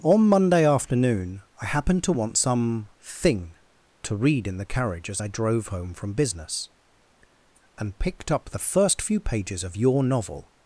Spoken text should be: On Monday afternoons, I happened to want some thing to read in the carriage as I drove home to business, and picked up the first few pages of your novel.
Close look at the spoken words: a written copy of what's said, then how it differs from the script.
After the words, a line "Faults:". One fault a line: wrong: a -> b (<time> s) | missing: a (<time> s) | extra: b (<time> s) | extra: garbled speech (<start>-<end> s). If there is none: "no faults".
On Monday afternoon, I happened to want some thing to read in the carriage as I drove home from business, and picked up the first few pages of your novel.
Faults:
wrong: afternoons -> afternoon (0.7 s)
wrong: to -> from (5.9 s)